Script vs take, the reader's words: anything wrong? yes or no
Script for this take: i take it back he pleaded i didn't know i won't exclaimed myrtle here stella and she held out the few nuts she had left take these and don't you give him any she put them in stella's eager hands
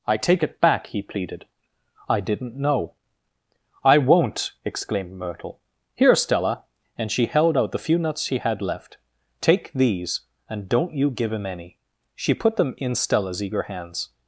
no